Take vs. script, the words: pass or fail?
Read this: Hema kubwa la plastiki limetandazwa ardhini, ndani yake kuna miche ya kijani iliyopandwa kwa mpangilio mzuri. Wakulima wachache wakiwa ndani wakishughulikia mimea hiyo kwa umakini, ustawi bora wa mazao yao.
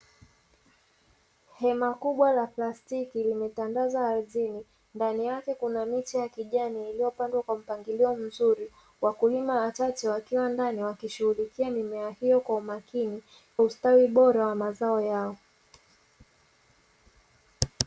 pass